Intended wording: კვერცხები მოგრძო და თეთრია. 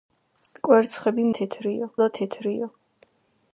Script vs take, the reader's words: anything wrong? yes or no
yes